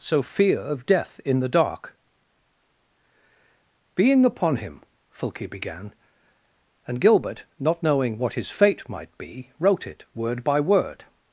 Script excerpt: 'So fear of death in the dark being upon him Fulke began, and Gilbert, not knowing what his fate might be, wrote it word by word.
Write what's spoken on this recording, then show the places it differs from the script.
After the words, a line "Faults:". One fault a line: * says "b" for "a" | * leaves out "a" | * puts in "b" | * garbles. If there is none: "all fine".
'So fear of death in the dark being upon him Fulke began, and Gilbert, not knowing what his fate might be, wrote it word by word.
Faults:
all fine